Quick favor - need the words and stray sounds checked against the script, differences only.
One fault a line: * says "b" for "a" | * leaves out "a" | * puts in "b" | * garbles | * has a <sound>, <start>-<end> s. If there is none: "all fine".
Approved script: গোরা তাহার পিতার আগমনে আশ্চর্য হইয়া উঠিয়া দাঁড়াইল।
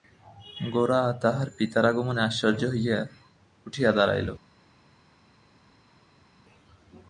all fine